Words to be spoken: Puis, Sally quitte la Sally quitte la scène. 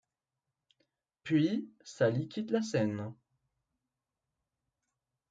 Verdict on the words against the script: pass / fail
fail